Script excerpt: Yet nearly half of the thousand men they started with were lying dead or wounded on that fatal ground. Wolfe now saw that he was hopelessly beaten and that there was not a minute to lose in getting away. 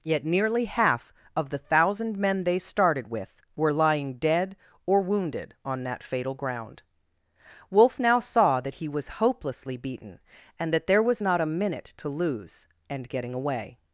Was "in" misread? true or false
true